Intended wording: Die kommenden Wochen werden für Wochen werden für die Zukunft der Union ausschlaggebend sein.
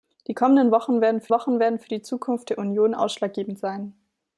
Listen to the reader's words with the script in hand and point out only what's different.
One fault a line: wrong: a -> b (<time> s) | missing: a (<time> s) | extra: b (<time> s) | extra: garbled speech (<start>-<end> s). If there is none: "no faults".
no faults